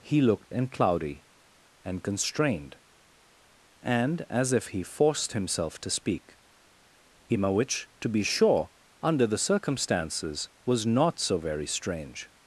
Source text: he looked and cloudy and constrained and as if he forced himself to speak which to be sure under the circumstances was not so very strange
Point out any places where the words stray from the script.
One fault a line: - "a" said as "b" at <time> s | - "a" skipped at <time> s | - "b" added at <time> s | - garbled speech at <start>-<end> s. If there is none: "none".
none